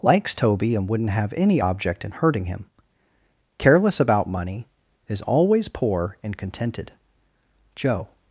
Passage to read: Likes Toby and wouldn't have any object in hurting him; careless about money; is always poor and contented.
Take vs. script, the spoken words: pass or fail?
fail